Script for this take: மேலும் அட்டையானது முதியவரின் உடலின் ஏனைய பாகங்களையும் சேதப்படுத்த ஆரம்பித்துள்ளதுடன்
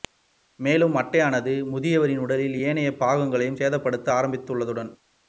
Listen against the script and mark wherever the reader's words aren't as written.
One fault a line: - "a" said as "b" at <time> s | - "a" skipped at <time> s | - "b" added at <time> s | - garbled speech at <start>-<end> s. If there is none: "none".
none